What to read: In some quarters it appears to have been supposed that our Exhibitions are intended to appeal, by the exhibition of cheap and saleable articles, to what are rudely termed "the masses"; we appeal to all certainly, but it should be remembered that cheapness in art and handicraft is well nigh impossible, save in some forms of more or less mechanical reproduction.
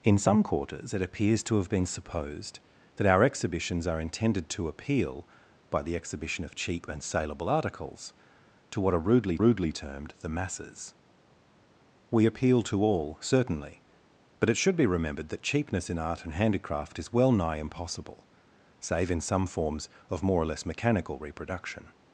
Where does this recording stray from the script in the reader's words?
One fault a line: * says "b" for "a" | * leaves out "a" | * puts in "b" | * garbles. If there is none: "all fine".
* puts in "rudely"